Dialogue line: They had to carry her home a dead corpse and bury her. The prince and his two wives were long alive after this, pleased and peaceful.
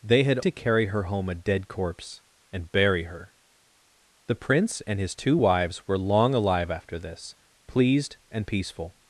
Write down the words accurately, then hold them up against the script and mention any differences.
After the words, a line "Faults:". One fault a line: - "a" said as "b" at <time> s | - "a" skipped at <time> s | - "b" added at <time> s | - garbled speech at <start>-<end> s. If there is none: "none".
They had to carry her home a dead corpse and bury her. The prince and his two wives were long alive after this, pleased and peaceful.
Faults:
none